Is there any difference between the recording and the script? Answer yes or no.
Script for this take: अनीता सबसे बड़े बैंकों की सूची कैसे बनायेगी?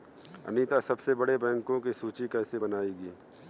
no